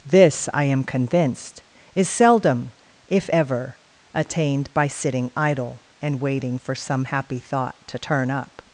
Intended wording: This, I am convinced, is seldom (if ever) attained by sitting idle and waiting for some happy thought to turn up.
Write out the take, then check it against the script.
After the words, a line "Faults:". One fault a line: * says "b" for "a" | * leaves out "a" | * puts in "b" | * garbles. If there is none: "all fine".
This, I am convinced, is seldom (if ever) attained by sitting idle and waiting for some happy thought to turn up.
Faults:
all fine